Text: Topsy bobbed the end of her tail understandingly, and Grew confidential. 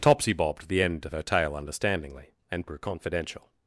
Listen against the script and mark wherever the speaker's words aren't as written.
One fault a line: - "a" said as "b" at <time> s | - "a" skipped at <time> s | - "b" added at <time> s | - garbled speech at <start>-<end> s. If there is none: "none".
none